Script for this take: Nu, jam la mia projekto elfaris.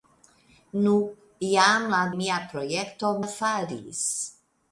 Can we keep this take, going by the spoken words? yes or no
yes